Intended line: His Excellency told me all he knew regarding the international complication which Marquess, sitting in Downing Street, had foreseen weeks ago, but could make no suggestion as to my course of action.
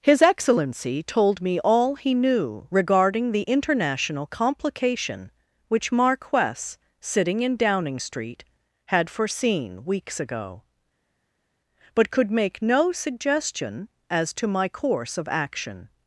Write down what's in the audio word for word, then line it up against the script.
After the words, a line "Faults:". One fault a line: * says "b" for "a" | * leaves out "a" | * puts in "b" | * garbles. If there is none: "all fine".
His Excellency told me all he knew regarding the international complication which Marquess, sitting in Downing Street, had foreseen weeks ago, but could make no suggestion as to my course of action.
Faults:
all fine